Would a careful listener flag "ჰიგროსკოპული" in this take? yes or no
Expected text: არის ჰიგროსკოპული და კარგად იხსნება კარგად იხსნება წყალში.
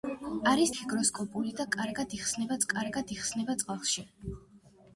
no